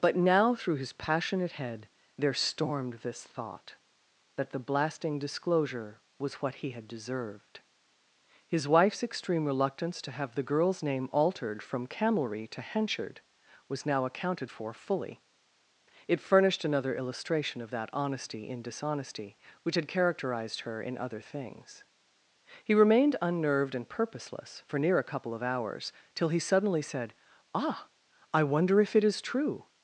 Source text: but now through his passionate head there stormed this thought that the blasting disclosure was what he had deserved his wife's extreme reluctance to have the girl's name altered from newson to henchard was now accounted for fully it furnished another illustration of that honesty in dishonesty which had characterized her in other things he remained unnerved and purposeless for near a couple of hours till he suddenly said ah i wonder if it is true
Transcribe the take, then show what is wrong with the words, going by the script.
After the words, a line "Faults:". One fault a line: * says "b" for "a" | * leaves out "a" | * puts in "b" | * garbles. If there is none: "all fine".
but now through his passionate head there stormed this thought that the blasting disclosure was what he had deserved his wife's extreme reluctance to have the girl's name altered from camelry to henchard was now accounted for fully it furnished another illustration of that honesty in dishonesty which had characterized her in other things he remained unnerved and purposeless for near a couple of hours till he suddenly said ah i wonder if it is true
Faults:
* says "camelry" for "newson"